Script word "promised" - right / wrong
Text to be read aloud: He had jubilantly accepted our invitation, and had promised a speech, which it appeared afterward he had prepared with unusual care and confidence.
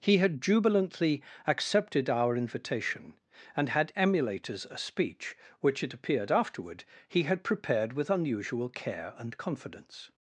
wrong